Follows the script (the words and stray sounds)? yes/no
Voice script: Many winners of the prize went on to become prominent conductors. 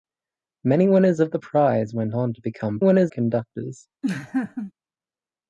no